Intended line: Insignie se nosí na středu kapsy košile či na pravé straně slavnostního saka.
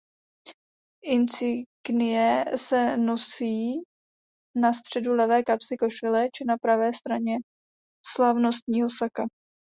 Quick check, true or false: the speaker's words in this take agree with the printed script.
false